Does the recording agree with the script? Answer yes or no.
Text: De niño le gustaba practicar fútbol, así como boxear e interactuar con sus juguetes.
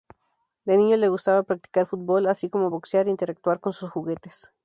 yes